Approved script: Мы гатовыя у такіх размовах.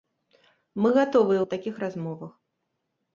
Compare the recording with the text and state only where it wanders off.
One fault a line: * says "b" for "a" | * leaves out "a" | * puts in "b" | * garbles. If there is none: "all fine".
all fine